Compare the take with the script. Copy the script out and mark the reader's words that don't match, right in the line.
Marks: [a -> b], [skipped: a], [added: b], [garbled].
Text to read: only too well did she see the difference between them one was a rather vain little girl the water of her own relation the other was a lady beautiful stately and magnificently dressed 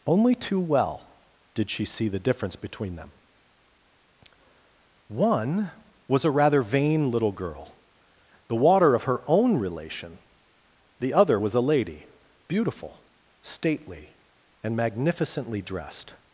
only too well did she see the difference between them one was a rather vain little girl the water of her own relation the other was a lady beautiful stately and magnificently dressed